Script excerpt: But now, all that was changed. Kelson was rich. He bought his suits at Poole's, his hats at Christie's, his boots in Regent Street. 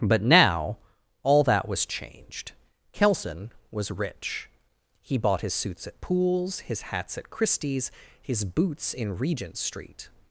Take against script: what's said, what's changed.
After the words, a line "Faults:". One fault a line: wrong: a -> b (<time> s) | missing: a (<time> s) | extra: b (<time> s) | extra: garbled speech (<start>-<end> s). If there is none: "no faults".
But now, all that was changed. Kelson was rich. He bought his suits at Poole's, his hats at Christie's, his boots in Regent Street.
Faults:
no faults